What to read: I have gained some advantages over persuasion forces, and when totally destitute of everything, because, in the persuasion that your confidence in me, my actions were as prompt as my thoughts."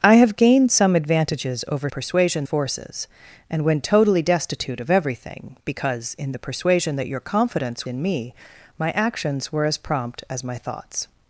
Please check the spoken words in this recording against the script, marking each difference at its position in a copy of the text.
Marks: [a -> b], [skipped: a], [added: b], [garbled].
I have gained some advantages over persuasion forces, and when totally destitute of everything, because, in the persuasion that your confidence in me, my actions were as prompt as my thoughts."